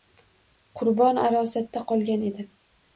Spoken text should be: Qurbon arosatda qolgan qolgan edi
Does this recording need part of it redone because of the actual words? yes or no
yes